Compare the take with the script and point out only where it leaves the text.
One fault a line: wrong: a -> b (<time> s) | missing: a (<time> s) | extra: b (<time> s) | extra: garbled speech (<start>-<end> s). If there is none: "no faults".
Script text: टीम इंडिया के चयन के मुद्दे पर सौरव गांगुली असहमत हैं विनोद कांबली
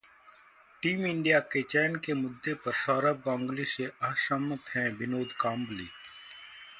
extra: से (3.7 s)